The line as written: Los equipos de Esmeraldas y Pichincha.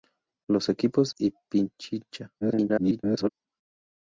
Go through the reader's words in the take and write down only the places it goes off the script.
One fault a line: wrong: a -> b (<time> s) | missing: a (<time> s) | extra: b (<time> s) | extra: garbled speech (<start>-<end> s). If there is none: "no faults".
missing: de Esmeraldas (1.1 s)
extra: garbled speech (2.4-3.3 s)